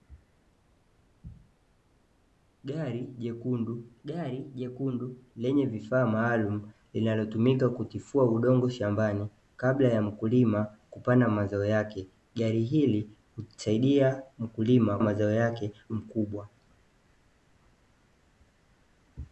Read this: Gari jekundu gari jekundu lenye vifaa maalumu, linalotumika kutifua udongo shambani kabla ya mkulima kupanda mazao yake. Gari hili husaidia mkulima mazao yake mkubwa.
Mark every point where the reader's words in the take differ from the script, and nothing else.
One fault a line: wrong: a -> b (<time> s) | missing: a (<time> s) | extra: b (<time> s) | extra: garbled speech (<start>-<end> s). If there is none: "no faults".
no faults